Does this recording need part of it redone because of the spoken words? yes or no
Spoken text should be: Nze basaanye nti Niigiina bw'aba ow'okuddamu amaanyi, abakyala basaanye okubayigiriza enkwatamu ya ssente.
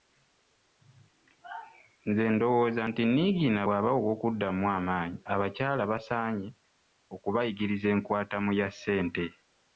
yes